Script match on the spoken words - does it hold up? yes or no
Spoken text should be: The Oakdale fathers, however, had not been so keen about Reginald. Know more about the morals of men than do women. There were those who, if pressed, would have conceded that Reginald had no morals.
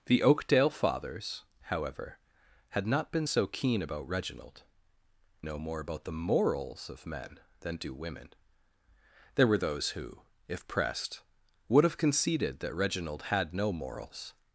yes